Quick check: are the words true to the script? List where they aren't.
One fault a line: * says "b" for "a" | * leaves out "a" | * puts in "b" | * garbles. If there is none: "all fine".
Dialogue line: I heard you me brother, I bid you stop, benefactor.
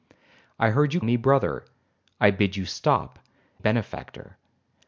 all fine